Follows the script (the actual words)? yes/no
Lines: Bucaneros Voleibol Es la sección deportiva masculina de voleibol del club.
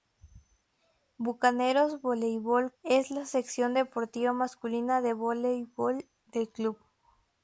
yes